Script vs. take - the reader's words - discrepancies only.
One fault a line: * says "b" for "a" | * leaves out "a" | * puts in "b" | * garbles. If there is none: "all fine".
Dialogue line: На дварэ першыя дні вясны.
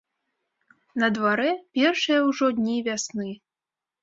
* puts in "ўжо"